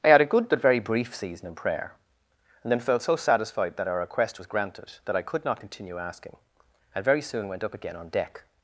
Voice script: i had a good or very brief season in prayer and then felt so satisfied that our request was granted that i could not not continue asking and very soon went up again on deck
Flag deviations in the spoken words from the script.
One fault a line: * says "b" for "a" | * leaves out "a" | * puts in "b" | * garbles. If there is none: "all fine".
* says "but" for "or"
* leaves out "not"